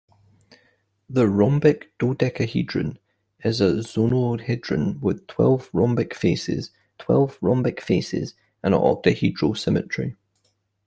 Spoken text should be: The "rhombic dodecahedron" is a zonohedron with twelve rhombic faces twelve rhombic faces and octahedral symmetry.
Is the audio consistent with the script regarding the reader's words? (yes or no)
yes